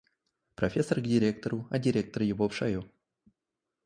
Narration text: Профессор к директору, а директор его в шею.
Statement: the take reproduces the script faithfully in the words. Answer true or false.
true